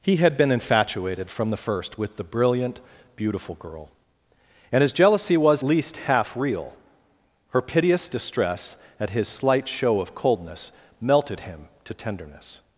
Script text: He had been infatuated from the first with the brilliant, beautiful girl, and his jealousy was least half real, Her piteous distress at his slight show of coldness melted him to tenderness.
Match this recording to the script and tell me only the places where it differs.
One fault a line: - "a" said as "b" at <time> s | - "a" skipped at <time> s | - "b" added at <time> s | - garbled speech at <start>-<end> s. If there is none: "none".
none